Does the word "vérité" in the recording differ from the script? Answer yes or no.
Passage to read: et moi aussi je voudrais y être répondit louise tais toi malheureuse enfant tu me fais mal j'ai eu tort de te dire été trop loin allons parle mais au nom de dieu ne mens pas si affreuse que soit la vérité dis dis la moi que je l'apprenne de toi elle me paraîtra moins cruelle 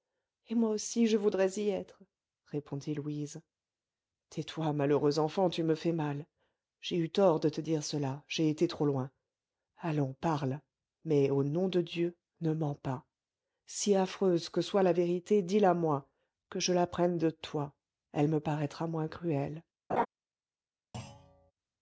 no